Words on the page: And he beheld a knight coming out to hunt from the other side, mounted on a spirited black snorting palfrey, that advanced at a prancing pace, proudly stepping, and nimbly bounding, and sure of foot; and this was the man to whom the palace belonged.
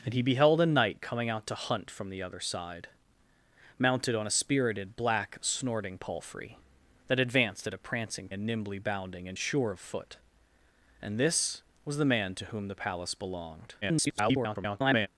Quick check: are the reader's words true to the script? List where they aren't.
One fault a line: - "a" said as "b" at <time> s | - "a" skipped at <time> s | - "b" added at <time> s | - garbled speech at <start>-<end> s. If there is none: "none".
- "pace proudly stepping" skipped at 8.3 s
- garbled speech at 13.8-15.1 s